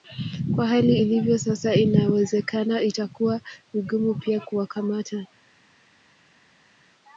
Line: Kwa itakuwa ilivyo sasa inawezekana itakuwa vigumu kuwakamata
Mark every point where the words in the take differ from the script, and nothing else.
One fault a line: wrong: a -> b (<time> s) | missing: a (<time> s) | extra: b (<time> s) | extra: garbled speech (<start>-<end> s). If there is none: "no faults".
wrong: itakuwa -> hali (0.7 s)
extra: pia (4.1 s)